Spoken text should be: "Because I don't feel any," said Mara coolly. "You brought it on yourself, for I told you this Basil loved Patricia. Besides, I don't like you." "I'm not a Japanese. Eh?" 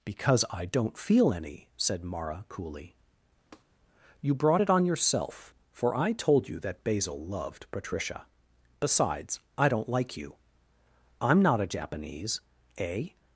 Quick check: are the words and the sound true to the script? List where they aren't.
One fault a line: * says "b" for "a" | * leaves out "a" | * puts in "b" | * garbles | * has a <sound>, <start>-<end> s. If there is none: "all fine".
* has a tap, 3.5-3.6 s
* says "that" for "this"